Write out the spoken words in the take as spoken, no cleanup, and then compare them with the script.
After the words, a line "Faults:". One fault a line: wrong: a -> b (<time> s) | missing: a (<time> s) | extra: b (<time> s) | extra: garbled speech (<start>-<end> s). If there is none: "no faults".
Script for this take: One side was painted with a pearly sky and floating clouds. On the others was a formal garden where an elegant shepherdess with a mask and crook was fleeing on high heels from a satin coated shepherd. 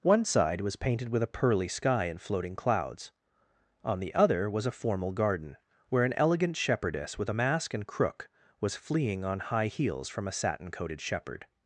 One side was painted with a pearly sky and floating clouds. On the other was a formal garden where an elegant shepherdess with a mask and crook was fleeing on high heels from a satin coated shepherd.
Faults:
wrong: others -> other (4.1 s)